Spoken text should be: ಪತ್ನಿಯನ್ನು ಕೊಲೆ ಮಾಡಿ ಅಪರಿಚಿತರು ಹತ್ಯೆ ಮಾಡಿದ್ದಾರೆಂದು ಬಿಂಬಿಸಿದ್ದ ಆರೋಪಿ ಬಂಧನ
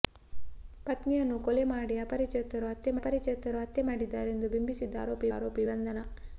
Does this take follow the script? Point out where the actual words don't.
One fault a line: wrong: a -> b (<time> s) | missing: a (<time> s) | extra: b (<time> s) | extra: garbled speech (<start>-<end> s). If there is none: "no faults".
extra: ಅಪರಿಚಿತರು ಹತ್ಯೆ (3.0 s)
extra: ಆರೋಪಿ (5.4 s)